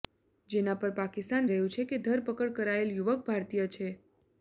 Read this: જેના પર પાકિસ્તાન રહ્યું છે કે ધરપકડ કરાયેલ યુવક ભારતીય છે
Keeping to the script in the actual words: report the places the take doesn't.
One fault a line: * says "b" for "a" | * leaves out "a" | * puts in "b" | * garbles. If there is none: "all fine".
all fine